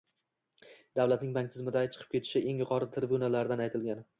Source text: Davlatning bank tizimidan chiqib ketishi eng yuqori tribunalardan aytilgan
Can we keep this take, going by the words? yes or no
yes